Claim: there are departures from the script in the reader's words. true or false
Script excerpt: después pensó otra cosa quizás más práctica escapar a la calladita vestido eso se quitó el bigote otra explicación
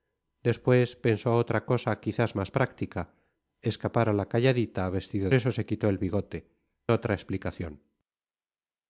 false